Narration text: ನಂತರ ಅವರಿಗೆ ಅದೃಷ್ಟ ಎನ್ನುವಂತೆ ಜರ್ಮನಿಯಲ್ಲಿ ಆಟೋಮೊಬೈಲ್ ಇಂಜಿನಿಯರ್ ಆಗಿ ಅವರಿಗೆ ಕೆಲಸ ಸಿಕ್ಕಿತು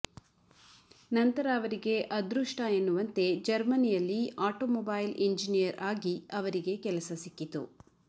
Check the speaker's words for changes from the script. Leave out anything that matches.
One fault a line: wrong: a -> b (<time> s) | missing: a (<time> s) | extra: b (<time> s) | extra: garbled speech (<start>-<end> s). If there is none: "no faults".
no faults